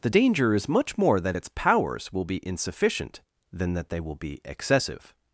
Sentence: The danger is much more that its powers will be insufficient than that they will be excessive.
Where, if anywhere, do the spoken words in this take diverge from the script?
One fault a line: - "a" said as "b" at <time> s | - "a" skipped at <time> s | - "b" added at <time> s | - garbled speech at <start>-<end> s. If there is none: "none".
none